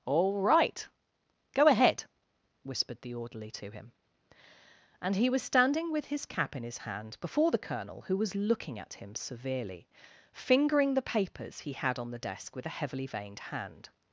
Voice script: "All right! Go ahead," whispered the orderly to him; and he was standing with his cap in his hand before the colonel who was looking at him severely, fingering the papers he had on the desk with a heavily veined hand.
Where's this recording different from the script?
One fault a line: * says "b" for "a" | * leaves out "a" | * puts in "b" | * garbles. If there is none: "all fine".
all fine